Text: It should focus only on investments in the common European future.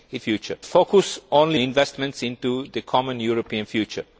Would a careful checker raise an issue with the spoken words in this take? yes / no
yes